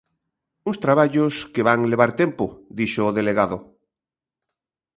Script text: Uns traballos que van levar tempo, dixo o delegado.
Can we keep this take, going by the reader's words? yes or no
yes